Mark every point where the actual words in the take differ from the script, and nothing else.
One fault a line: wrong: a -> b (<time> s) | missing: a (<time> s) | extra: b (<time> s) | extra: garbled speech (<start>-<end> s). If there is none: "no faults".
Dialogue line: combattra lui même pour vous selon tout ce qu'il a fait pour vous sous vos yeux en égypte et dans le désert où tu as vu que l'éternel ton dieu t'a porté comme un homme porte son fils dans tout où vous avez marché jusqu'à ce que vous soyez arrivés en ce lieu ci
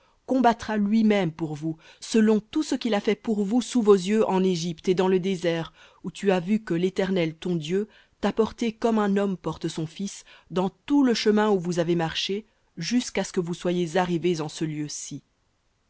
extra: le chemin (11.0 s)